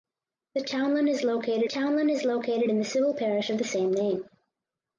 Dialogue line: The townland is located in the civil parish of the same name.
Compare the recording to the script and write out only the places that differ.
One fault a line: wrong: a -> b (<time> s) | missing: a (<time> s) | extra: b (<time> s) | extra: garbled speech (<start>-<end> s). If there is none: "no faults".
extra: townland is located (1.7 s)